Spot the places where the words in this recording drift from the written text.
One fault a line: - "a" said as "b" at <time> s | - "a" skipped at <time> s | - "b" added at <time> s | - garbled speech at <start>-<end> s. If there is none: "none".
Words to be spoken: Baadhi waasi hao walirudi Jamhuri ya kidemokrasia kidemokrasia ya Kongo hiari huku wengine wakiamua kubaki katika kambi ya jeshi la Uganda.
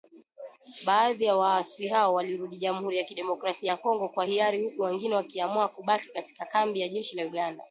- "ya" added at 1.2 s
- "kidemokrasia" skipped at 3.7 s
- "kwa" added at 4.1 s